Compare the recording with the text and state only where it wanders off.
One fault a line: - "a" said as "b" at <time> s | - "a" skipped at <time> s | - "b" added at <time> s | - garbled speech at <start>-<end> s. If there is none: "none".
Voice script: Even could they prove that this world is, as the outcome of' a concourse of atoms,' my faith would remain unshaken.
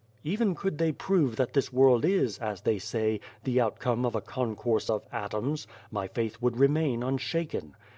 - "they say" added at 2.6 s